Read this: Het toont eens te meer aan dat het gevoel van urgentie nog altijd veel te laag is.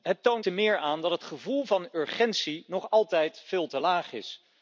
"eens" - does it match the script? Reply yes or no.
no